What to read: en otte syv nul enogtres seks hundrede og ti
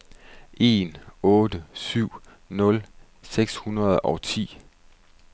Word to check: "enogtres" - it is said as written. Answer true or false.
false